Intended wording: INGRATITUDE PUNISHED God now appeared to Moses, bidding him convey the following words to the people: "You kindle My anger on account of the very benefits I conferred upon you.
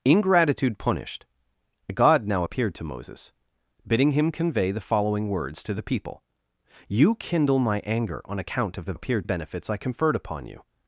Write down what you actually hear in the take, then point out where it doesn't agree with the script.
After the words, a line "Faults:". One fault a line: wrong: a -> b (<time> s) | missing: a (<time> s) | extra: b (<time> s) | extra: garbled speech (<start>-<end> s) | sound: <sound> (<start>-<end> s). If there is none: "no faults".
INGRATITUDE PUNISHED God now appeared to Moses, bidding him convey the following words to the people: "You kindle My anger on account of the appeared benefits I conferred upon you.
Faults:
wrong: very -> appeared (8.9 s)